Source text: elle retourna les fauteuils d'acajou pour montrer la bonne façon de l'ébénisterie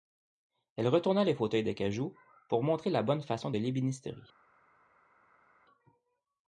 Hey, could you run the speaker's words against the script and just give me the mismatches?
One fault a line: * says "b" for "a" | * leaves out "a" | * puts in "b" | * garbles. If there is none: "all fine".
all fine